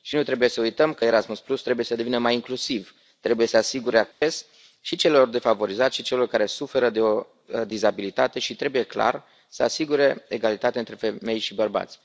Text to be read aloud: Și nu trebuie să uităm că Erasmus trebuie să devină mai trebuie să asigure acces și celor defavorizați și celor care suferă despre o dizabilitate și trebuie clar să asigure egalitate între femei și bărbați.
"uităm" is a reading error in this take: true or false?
false